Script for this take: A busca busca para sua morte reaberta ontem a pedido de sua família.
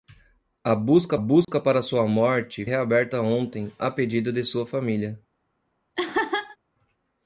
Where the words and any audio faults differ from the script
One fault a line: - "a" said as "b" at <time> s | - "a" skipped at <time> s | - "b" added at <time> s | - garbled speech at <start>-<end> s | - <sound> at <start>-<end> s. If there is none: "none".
- dropout at 1.4-1.5 s
- laugh at 6.0-6.6 s